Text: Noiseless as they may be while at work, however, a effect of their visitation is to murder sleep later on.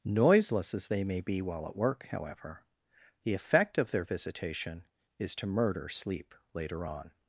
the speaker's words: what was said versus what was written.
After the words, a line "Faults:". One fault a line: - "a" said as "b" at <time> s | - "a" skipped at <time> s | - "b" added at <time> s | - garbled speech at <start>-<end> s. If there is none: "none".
Noiseless as they may be while at work, however, the effect of their visitation is to murder sleep later on.
Faults:
- "a" said as "the" at 3.2 s